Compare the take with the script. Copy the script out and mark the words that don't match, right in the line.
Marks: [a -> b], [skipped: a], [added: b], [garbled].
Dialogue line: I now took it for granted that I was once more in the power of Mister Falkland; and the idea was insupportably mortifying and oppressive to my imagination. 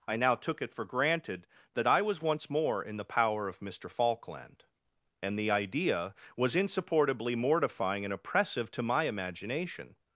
I now took it for granted that I was once more in the power of Mister Falkland; and the idea was insupportably mortifying and oppressive to my imagination.